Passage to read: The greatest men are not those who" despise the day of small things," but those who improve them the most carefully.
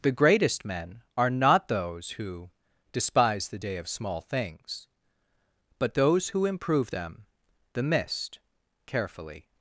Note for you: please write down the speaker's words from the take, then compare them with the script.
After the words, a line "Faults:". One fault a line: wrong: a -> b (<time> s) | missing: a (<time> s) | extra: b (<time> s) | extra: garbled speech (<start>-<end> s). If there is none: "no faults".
The greatest men are not those who" despise the day of small things," but those who improve them the mist carefully.
Faults:
wrong: most -> mist (7.8 s)